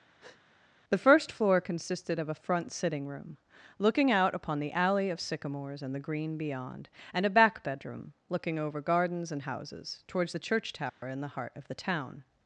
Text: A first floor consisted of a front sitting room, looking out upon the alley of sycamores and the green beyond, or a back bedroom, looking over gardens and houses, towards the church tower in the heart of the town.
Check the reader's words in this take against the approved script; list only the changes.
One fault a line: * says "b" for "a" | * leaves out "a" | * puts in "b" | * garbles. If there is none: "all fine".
* says "The" for "A"
* says "and" for "or"